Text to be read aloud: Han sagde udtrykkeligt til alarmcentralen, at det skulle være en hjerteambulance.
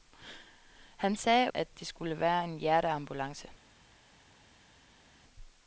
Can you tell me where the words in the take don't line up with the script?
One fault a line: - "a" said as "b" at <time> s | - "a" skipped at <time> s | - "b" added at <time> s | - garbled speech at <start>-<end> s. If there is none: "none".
- "udtrykkeligt til alarmcentralen" skipped at 1.5 s